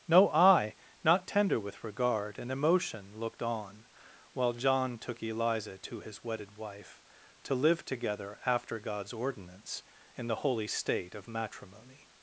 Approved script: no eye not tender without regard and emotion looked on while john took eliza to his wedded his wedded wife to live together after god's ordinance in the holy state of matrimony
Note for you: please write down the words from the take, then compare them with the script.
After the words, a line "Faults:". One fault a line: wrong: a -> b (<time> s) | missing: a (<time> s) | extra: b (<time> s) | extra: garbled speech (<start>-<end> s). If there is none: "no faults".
no eye not tender with regard and emotion looked on while john took eliza to his wedded wife to live together after god's ordinance in the holy state of matrimony
Faults:
wrong: without -> with (1.6 s)
missing: his wedded (6.6 s)